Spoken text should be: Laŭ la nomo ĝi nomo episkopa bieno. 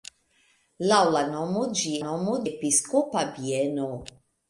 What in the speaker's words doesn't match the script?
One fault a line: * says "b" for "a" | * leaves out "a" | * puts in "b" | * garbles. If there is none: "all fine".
all fine